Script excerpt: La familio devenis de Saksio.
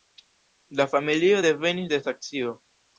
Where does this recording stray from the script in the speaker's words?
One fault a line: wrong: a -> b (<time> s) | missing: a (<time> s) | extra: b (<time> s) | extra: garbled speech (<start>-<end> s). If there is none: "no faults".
no faults